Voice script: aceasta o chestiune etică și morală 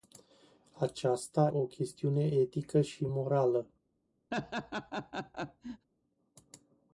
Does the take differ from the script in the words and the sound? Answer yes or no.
yes